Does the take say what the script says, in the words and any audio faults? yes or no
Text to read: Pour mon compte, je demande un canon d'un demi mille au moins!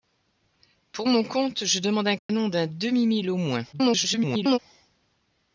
no